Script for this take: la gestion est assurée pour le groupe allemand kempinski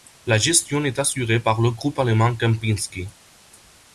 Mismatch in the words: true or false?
true